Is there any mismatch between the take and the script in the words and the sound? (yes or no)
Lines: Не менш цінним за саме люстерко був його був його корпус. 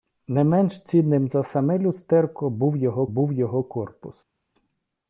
no